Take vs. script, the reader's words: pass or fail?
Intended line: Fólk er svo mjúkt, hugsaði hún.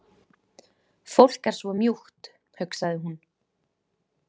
pass